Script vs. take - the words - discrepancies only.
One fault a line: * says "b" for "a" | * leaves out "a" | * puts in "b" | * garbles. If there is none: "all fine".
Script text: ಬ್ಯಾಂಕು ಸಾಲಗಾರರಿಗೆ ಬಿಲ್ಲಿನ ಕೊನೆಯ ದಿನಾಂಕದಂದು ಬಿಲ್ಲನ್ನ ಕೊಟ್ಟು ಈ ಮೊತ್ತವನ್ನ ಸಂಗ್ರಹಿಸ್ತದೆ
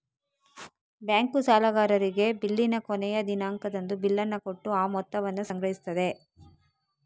* says "ಆ" for "ಈ"